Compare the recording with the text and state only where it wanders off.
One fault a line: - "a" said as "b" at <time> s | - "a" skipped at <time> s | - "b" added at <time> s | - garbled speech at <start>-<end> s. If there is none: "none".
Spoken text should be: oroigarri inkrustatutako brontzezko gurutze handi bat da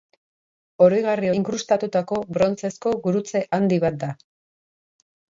none